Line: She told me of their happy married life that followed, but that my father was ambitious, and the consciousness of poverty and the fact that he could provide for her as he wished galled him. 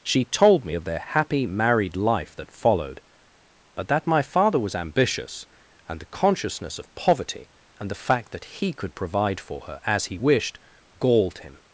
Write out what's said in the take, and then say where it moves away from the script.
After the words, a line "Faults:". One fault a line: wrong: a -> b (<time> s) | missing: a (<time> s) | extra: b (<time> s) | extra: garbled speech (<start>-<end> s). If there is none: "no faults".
She told me of their happy married life that followed, but that my father was ambitious, and the consciousness of poverty and the fact that he could provide for her as he wished galled him.
Faults:
no faults